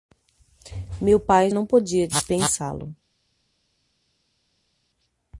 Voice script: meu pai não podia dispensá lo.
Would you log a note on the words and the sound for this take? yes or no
no